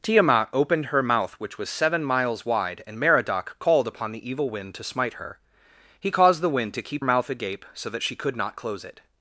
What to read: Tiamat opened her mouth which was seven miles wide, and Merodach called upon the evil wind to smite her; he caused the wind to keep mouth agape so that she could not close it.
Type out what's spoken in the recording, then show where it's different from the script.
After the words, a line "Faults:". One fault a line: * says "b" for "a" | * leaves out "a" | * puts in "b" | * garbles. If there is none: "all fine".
Tiamat opened her mouth which was seven miles wide, and Merodach called upon the evil wind to smite her; he caused the wind to keep mouth agape so that she could not close it.
Faults:
all fine